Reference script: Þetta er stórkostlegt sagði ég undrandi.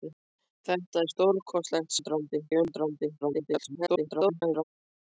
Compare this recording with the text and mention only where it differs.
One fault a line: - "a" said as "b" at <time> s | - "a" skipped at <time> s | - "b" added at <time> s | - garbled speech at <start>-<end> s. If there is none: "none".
- "sagði" said as "undrandi" at 2.0 s
- garbled speech at 3.2-4.6 s